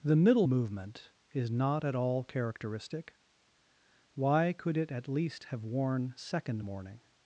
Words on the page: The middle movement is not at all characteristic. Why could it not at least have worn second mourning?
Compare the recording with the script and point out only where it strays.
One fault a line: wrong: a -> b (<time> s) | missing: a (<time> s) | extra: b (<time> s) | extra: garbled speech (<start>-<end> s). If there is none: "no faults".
missing: not (4.9 s)